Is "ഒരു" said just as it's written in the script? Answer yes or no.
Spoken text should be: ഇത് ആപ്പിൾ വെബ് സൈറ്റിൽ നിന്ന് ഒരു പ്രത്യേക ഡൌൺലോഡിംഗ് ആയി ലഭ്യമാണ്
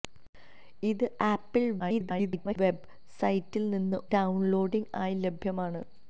no